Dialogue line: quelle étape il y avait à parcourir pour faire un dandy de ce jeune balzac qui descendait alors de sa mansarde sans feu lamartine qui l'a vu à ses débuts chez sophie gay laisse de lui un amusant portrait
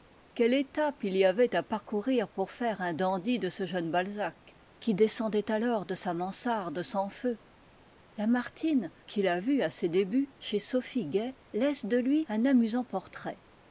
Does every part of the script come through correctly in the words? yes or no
yes